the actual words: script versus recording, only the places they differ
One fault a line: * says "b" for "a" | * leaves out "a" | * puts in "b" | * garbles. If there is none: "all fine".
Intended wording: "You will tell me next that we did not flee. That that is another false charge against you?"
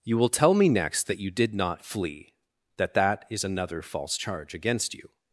* says "you" for "we"